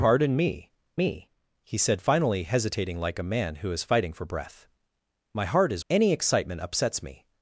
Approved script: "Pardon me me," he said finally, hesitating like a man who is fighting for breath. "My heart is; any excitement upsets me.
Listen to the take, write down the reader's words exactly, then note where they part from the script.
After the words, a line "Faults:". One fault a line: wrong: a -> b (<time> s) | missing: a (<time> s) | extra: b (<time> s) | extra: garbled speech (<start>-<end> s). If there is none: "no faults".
"Pardon me me," he said finally, hesitating like a man who is fighting for breath. "My heart is; any excitement upsets me.
Faults:
no faults